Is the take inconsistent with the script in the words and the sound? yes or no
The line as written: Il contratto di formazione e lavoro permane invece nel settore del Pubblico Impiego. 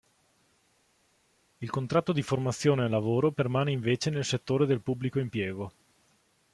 no